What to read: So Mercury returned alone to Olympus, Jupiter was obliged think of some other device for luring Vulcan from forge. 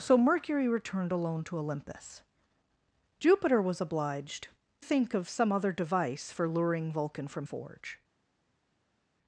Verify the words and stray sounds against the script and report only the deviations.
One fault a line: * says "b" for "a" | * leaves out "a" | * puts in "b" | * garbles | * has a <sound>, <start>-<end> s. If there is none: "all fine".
all fine